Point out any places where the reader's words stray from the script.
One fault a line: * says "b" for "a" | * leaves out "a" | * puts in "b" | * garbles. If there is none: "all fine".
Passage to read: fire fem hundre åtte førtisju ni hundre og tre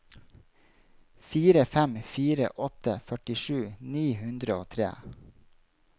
* says "fire" for "hundre"